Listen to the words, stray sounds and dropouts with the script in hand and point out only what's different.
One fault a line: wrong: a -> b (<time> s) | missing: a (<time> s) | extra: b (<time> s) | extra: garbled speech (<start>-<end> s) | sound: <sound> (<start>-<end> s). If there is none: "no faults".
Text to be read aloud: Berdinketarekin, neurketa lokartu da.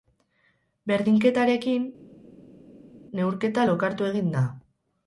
extra: egin (4.1 s)